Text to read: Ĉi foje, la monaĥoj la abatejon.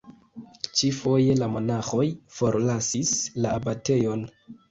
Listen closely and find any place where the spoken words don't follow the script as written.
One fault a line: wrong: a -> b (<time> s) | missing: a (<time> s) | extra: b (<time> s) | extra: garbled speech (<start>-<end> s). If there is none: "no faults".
extra: forlasis (2.4 s)